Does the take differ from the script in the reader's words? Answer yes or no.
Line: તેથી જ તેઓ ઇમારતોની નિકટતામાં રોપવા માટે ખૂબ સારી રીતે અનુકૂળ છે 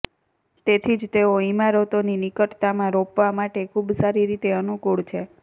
no